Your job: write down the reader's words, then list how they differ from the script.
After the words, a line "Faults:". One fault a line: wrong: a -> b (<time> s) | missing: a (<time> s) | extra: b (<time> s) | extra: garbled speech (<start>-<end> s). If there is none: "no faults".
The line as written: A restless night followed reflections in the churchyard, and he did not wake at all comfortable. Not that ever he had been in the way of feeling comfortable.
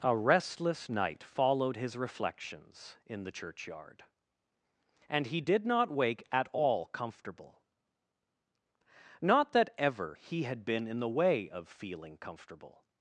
A restless night followed his reflections in the churchyard, and he did not wake at all comfortable. Not that ever he had been in the way of feeling comfortable.
Faults:
extra: his (1.8 s)